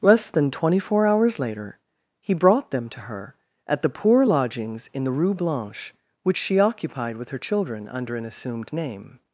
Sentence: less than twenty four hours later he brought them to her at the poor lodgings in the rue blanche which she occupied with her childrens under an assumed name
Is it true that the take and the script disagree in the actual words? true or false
true